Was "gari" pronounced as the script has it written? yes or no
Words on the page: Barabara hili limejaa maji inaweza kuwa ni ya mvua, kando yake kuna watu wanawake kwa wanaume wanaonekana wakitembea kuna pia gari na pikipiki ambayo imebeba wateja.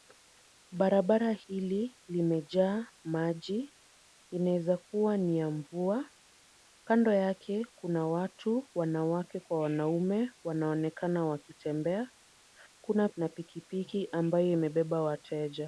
no